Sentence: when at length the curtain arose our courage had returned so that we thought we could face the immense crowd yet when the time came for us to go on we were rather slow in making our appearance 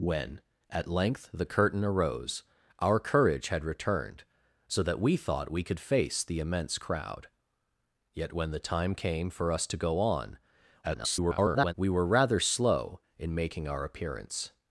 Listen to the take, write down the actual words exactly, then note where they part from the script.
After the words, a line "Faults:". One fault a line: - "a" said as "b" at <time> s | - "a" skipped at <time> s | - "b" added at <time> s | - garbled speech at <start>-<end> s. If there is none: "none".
when at length the curtain arose our courage had returned so that we thought we could face the immense crowd yet when the time came for us to go on [garbled] we were rather slow in making our appearance
Faults:
- garbled speech at 10.8-11.7 s